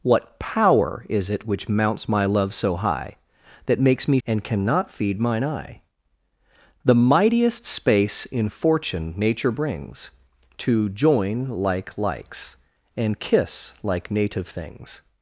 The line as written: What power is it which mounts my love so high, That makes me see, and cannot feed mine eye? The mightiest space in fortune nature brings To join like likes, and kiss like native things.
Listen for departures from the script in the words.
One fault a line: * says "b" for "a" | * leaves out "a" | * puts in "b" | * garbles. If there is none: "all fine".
* leaves out "see"